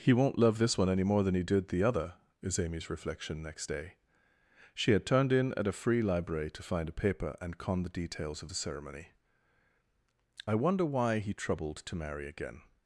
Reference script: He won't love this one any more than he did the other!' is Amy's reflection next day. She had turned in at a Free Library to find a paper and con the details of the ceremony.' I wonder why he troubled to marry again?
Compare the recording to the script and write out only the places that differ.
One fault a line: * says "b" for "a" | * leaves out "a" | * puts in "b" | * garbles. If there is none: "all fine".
all fine